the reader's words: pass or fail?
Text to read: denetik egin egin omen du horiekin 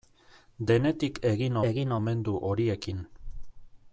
pass